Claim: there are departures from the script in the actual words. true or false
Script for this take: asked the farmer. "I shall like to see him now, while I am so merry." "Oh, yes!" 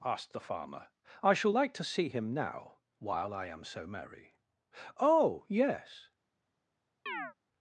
false